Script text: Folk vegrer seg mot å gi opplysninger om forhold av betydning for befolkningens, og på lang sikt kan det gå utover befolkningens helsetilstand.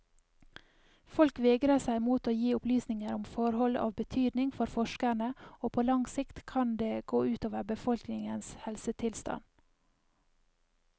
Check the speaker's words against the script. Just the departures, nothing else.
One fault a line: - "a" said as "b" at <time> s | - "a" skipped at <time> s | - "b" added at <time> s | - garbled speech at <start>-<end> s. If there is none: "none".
- "befolkningens" said as "forskerne" at 4.8 s